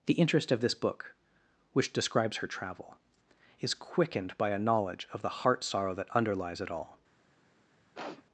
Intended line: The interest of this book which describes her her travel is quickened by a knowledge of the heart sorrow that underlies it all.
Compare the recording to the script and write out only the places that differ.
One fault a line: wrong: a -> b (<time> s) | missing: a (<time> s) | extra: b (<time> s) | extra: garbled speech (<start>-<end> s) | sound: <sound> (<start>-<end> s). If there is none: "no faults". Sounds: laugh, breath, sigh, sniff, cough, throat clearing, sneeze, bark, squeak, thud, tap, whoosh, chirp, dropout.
missing: her (2.5 s)
sound: sniff (7.9-8.2 s)